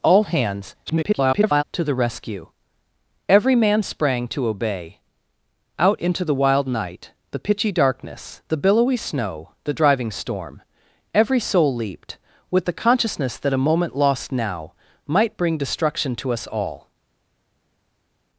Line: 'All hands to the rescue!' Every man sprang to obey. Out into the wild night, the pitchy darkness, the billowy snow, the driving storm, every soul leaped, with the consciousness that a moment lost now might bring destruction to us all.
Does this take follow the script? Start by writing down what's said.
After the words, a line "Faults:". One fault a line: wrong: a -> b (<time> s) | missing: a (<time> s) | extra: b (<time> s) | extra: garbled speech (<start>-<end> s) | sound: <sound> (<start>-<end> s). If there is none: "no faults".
'All hands [garbled] to the rescue!' Every man sprang to obey. Out into the wild night, the pitchy darkness, the billowy snow, the driving storm, every soul leaped, with the consciousness that a moment lost now might bring destruction to us all.
Faults:
extra: garbled speech (0.9-1.6 s)